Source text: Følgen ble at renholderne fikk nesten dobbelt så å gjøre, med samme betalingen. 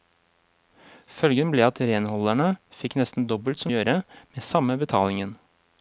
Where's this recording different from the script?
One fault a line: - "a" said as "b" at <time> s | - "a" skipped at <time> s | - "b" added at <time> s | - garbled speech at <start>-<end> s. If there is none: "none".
none